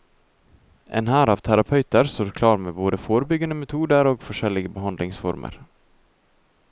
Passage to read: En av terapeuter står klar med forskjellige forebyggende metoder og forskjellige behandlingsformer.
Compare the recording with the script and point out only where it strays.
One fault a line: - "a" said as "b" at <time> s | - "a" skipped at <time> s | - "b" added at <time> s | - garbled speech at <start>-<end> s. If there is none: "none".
- "hær" added at 1.1 s
- "forskjellige" said as "både" at 2.8 s